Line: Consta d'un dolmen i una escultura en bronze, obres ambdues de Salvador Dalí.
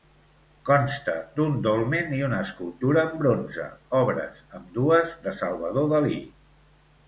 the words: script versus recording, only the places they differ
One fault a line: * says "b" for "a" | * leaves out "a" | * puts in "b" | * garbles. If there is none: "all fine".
all fine